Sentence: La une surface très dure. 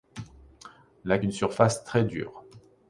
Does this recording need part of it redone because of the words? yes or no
no